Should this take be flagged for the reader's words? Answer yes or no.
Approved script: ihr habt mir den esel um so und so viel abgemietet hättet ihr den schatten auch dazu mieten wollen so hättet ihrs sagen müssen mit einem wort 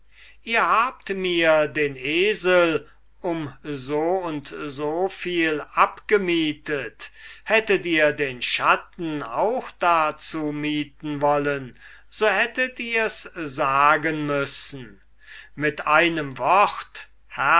no